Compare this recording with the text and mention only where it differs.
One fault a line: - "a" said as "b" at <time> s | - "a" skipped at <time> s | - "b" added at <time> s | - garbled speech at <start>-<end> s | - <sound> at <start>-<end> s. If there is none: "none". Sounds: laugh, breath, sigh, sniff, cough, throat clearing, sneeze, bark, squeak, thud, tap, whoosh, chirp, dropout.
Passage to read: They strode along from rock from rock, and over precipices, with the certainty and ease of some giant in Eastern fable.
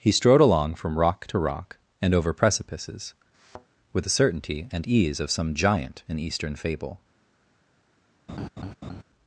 - "They" said as "He" at 0.0 s
- "from" said as "to" at 1.3 s
- thud at 3.3-3.7 s
- laugh at 8.3-9.0 s